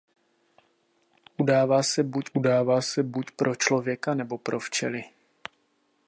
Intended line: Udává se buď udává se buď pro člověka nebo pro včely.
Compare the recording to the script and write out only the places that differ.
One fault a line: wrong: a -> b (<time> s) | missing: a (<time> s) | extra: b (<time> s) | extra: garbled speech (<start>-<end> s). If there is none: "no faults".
no faults